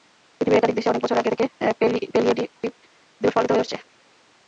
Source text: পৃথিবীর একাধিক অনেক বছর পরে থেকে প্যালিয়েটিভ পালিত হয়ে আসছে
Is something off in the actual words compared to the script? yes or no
yes